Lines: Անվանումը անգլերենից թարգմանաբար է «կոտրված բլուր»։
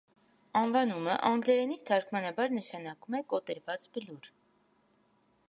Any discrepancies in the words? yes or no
yes